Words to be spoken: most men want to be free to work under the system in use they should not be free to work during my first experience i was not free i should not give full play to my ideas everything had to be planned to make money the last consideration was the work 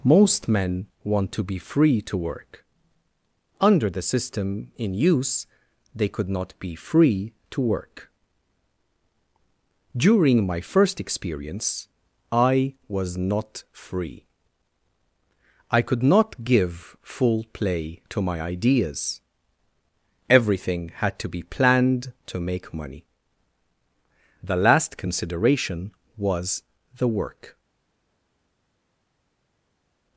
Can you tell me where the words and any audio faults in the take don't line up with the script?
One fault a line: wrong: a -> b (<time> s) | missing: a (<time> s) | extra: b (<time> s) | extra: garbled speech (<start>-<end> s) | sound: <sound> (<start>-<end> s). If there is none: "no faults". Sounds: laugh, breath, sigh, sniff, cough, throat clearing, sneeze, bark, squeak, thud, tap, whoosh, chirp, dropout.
wrong: should -> could (6.1 s)
wrong: should -> could (15.8 s)